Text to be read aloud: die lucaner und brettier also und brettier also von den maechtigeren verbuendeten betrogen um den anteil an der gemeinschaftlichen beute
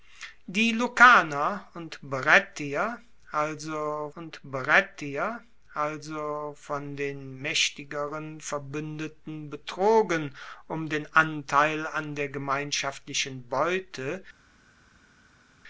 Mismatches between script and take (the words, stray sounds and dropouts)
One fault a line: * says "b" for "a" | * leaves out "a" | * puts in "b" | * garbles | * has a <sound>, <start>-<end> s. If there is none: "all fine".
all fine